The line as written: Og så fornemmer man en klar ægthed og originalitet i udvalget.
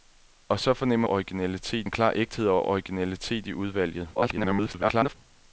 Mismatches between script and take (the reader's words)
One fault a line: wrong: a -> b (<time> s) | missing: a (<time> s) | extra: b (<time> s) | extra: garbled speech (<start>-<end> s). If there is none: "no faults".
wrong: man -> originalitet (1.1 s)
extra: garbled speech (4.1-5.2 s)